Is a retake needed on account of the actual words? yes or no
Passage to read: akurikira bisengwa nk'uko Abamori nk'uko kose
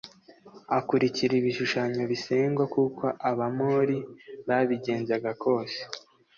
yes